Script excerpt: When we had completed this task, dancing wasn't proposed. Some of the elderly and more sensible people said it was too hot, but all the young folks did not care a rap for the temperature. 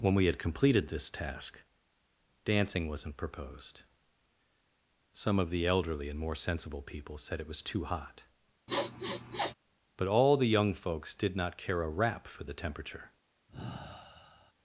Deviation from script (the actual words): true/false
false